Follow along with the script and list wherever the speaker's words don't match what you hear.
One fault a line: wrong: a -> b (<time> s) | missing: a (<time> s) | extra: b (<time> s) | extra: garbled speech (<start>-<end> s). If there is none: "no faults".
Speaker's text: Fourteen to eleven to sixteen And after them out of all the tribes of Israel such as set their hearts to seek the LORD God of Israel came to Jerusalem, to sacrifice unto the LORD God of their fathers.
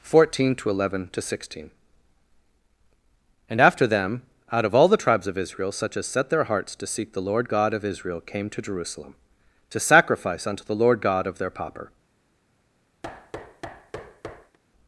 wrong: fathers -> pauper (11.5 s)